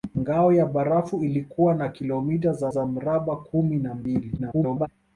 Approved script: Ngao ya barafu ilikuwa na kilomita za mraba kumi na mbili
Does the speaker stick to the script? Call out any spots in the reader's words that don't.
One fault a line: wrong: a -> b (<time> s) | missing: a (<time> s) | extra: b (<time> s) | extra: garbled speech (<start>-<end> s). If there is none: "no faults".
extra: za (2.7 s)
extra: garbled speech (4.4-4.9 s)